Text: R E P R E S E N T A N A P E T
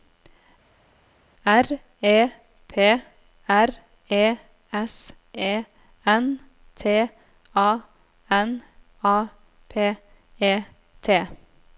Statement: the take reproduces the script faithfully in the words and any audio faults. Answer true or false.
true